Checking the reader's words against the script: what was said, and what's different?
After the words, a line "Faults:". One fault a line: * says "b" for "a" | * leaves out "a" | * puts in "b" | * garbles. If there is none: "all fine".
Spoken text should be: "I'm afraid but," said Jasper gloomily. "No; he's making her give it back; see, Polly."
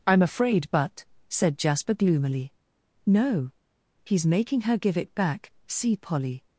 "I'm afraid but," said Jasper gloomily. "No; he's making her give it back; see, Polly."
Faults:
all fine